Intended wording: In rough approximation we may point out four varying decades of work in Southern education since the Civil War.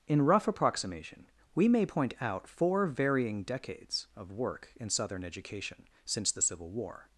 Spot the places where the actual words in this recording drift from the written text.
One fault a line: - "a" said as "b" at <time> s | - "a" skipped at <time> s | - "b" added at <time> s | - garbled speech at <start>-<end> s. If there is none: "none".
none